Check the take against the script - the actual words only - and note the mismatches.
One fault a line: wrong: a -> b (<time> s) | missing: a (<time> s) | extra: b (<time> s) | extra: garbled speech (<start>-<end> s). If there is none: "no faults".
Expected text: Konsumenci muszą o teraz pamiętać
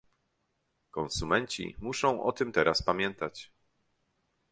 extra: tym (2.3 s)